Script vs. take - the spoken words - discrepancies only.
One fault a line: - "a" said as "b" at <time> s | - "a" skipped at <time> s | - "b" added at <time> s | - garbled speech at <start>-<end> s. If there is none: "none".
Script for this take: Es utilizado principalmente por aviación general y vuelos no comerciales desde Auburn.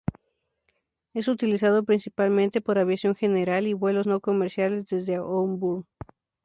none